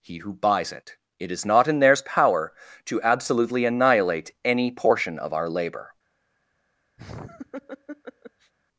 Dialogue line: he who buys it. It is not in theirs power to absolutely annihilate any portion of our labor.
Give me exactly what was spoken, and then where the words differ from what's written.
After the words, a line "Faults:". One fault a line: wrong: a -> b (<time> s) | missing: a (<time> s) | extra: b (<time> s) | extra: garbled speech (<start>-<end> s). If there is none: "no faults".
he who buys it. It is not in theirs power to absolutely annihilate any portion of our labor.
Faults:
no faults